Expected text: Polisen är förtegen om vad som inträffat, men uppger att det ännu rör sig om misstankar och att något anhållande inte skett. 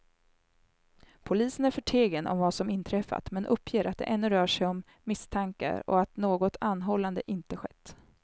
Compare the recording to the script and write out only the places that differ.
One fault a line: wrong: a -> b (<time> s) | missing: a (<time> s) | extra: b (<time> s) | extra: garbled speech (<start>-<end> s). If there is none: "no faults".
no faults